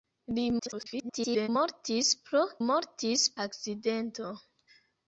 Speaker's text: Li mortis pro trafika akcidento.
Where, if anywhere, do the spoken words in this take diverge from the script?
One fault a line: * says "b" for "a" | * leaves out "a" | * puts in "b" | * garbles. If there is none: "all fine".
* garbles
* says "mortis" for "trafika"